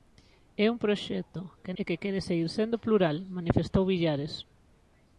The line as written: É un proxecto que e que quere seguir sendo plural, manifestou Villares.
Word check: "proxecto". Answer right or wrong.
right